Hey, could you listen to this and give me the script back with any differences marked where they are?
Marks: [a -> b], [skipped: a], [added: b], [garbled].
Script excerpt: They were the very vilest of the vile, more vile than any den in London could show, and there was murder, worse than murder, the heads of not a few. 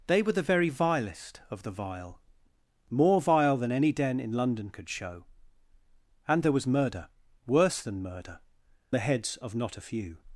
They were the very vilest of the vile, more vile than any den in London could show, and there was murder, worse than murder, the heads of not a few.